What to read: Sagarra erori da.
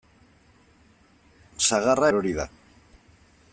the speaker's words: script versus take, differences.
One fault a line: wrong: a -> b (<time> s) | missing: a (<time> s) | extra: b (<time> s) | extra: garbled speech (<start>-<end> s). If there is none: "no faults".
no faults